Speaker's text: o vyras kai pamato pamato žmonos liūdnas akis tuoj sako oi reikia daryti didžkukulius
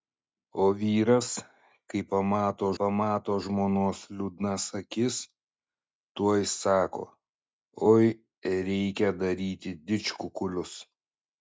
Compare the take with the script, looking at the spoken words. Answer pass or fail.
pass